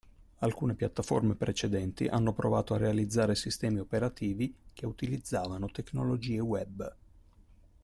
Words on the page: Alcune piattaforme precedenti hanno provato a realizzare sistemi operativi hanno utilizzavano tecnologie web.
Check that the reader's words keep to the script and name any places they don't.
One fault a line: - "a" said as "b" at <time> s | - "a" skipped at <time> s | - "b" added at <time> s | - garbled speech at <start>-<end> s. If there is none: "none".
- "hanno" said as "che" at 4.7 s